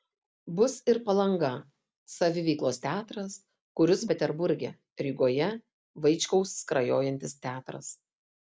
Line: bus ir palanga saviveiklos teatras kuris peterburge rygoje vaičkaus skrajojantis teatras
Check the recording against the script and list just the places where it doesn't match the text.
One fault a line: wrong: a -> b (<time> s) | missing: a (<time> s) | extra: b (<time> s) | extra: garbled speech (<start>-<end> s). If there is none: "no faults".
no faults